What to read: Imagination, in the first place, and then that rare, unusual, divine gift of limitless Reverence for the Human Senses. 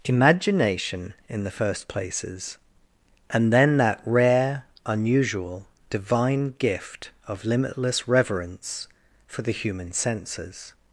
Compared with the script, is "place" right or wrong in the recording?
wrong